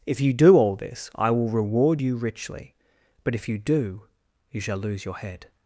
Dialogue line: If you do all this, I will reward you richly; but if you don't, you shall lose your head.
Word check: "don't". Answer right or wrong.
wrong